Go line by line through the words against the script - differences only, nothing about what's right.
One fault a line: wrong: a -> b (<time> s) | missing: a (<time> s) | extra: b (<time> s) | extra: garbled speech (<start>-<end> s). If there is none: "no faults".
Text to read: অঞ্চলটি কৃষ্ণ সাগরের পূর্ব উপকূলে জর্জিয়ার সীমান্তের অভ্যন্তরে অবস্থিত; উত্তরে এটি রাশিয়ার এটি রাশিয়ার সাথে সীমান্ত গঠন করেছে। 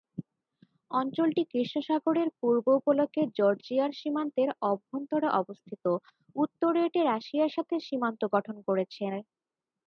missing: এটি রাশিয়ার (7.5 s)